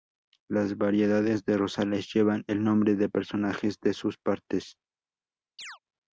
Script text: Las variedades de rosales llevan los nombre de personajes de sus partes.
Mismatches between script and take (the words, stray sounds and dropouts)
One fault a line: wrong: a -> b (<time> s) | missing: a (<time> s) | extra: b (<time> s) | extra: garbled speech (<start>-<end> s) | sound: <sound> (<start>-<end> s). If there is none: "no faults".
wrong: los -> el (2.5 s)
sound: chirp (5.6-5.8 s)